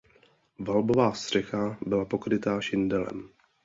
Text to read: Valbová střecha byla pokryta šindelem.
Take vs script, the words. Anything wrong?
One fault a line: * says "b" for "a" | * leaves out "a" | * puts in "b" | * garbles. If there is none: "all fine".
all fine